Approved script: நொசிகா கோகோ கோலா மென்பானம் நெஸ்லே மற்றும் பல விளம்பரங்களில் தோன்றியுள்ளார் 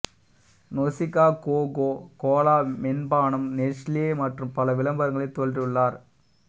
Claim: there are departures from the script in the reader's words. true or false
false